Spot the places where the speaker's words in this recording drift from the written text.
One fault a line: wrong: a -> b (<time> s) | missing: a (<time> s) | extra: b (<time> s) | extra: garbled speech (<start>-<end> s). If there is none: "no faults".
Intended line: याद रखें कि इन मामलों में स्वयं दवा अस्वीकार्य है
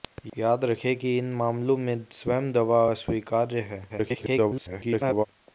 extra: garbled speech (3.9-5.3 s)